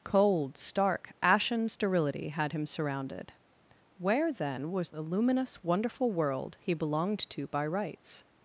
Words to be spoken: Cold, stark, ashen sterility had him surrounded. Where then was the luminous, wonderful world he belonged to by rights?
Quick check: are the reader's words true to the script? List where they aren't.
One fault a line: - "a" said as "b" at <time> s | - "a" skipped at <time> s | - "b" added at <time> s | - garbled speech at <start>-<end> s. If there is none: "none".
none